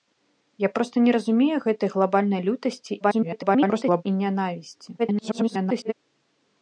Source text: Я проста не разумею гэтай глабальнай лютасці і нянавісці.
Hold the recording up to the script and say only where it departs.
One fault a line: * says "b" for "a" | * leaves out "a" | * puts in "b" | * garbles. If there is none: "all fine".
* garbles
* garbles